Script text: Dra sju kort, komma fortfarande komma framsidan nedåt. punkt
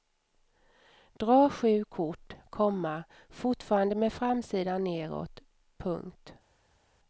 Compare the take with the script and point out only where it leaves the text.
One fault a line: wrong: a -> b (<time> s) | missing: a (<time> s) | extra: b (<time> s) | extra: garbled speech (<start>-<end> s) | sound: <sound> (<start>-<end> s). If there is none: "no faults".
wrong: komma -> med (4.0 s)